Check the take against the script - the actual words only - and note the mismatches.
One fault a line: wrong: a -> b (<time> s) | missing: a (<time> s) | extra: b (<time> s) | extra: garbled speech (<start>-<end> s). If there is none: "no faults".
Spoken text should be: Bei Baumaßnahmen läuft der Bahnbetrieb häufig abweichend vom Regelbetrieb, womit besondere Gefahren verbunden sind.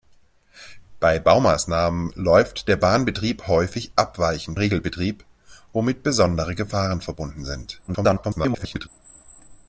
missing: vom (4.6 s)
extra: garbled speech (7.9-8.9 s)